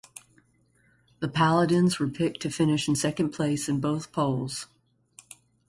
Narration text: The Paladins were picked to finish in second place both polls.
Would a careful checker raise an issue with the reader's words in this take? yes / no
yes